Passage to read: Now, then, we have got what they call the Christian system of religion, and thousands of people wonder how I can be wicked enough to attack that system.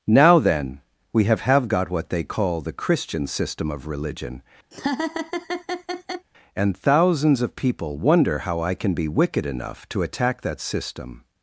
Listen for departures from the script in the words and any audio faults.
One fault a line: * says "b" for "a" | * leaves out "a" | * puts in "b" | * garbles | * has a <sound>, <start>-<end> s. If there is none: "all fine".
* puts in "have"
* has a laugh, 4.7-6.3 s